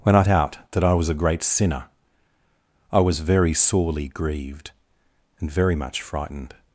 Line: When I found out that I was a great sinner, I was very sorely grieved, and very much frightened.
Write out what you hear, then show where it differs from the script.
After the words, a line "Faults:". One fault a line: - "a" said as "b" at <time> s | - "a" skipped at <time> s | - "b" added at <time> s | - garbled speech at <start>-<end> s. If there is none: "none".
When I out that I was a great sinner, I was very sorely grieved, and very much frightened.
Faults:
- "found" skipped at 0.2 s